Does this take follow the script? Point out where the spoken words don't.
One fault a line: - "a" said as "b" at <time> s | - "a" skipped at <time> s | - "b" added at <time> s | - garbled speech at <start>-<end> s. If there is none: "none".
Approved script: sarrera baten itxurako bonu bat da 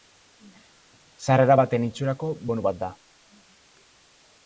none